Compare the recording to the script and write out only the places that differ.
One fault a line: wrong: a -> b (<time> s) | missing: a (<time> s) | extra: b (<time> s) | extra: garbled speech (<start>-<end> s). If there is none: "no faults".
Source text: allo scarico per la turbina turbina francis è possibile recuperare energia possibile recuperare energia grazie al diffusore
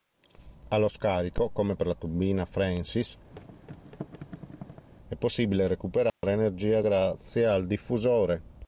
extra: come (1.5 s)
missing: turbina (2.5 s)
missing: possibile recuperare energia (6.8 s)